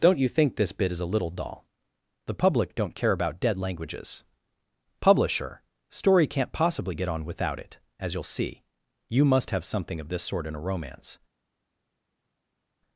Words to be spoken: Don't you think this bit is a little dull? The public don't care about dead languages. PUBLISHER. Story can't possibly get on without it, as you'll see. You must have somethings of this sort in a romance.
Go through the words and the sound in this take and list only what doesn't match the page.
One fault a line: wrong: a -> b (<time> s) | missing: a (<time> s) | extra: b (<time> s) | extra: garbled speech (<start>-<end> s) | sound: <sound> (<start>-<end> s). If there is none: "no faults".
wrong: somethings -> something (9.6 s)